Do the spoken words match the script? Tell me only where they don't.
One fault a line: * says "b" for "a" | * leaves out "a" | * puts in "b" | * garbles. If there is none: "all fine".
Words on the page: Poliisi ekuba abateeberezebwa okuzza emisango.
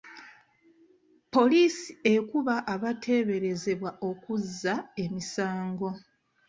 all fine